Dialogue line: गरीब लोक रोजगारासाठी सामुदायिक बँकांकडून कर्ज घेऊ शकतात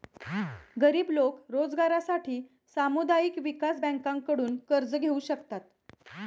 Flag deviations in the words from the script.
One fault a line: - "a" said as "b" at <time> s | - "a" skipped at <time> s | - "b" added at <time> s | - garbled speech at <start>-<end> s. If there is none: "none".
- "विकास" added at 3.4 s